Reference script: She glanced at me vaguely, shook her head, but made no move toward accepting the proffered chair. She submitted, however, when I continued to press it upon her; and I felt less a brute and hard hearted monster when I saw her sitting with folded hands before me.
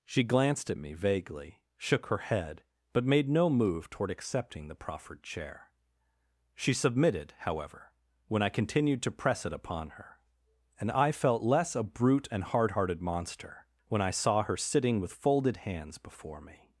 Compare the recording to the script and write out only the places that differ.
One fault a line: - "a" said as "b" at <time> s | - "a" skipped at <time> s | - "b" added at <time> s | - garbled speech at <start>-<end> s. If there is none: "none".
none